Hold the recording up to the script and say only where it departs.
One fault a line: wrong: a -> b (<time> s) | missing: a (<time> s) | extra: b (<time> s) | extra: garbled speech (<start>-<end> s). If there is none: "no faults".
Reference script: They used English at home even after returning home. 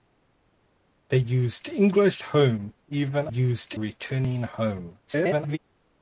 missing: at (2.2 s)
wrong: after -> used (3.3 s)
extra: garbled speech (5.1-5.6 s)